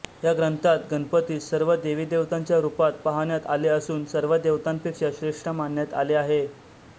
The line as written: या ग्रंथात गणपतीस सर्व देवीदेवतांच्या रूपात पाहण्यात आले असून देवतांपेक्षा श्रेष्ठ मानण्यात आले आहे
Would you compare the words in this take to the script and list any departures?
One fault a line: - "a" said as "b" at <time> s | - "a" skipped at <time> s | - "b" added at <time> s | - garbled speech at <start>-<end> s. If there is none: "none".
- "सर्व" added at 4.1 s